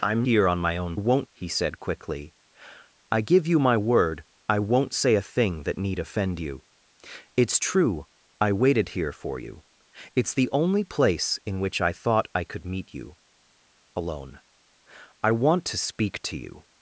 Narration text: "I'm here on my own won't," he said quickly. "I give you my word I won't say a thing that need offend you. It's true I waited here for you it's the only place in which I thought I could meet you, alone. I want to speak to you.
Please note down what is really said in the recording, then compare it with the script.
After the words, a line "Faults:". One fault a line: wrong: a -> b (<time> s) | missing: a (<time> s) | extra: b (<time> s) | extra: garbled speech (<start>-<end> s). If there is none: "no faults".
"I'm here on my own won't," he said quickly. "I give you my word I won't say a thing that need offend you. It's true I waited here for you it's the only place in which I thought I could meet you, alone. I want to speak to you.
Faults:
no faults